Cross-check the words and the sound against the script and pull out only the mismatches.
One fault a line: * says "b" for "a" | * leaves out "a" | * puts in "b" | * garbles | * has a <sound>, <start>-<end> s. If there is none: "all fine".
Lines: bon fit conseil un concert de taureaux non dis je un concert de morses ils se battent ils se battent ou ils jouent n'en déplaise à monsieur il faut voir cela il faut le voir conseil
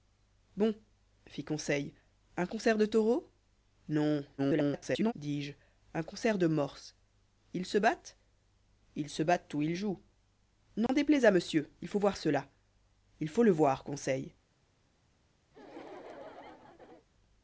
* garbles
* has a dropout, 10.9-10.9 s
* has a laugh, 15.5-17.1 s